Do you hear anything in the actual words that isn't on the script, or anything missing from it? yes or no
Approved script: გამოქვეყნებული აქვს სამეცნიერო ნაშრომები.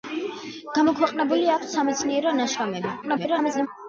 yes